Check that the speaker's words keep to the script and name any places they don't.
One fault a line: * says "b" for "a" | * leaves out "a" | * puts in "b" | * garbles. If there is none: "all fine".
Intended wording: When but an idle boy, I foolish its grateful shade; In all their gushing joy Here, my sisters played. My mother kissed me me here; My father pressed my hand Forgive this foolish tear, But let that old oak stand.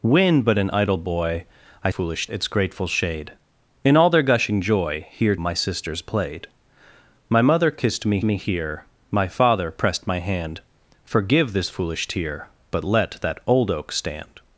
all fine